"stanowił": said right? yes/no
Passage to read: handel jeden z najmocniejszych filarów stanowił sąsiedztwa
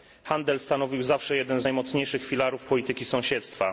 no